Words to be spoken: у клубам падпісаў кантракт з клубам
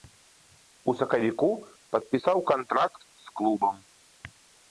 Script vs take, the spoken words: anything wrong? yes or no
yes